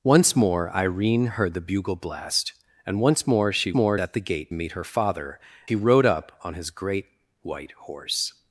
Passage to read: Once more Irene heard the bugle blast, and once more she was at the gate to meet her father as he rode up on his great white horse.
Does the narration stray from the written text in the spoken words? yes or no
yes